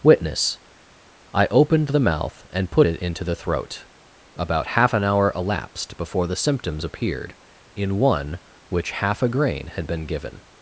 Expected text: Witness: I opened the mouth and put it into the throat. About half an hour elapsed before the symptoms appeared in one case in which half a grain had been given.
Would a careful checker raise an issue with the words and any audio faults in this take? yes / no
yes